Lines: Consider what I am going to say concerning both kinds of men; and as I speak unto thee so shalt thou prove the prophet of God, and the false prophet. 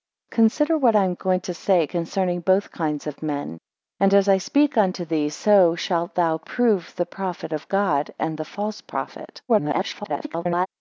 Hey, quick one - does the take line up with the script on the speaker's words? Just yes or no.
no